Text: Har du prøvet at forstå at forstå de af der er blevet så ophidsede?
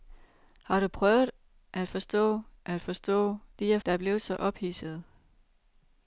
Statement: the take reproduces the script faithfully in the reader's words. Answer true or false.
true